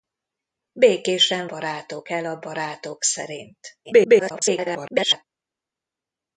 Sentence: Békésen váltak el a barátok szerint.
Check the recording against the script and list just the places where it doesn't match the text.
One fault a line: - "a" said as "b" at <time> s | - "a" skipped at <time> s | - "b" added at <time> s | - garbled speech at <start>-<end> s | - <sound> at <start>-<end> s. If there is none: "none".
- "váltak" said as "barátok" at 1.4 s
- garbled speech at 3.8-5.2 s